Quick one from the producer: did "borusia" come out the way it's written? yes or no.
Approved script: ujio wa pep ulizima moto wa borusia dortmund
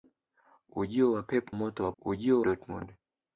no